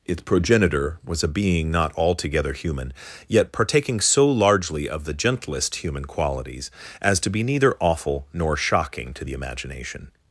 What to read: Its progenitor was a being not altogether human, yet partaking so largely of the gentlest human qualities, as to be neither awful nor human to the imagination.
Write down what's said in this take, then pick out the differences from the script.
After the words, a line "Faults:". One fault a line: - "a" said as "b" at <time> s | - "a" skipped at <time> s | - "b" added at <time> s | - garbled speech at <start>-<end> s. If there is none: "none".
Its progenitor was a being not altogether human, yet partaking so largely of the gentlest human qualities, as to be neither awful nor shocking to the imagination.
Faults:
- "human" said as "shocking" at 8.6 s